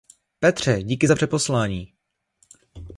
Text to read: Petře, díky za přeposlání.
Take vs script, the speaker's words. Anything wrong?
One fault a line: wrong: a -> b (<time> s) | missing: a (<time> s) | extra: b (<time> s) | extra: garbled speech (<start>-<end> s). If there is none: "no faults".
no faults